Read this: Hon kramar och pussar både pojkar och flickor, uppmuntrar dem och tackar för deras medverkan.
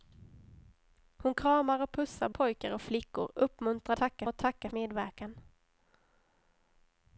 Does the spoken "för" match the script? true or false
false